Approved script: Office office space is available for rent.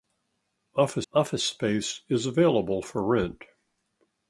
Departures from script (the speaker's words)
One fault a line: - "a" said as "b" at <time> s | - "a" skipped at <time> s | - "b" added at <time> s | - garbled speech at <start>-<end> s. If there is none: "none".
none